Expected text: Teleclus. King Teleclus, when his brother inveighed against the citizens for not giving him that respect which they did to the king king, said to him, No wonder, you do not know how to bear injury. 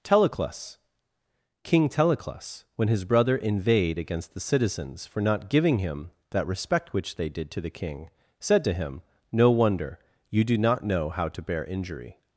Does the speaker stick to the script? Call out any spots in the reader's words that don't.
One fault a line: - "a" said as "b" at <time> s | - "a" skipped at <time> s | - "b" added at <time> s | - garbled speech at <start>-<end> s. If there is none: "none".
- "king" skipped at 8.1 s